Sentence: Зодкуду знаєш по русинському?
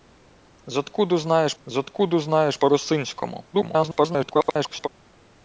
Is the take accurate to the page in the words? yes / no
no